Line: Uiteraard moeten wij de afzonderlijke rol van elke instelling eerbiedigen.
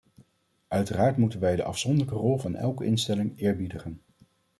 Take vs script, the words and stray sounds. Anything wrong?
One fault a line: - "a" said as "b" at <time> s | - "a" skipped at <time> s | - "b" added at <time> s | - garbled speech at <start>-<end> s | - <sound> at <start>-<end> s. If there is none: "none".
none